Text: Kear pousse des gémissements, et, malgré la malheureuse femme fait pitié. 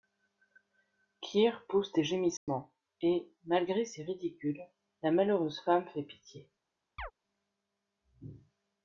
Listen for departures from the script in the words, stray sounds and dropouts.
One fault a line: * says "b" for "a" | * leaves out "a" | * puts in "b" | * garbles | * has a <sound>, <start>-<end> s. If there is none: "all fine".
* has a dropout, 2.4-2.5 s
* puts in "ses ridicules"
* has a chirp, 7.0-7.1 s